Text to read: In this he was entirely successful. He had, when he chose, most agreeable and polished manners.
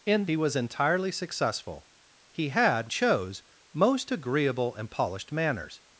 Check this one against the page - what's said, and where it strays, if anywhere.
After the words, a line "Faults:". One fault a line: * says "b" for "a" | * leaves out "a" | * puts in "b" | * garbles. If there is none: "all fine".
In he was entirely successful. He had, chose, most agreeable and polished manners.
Faults:
* leaves out "this"
* leaves out "when he"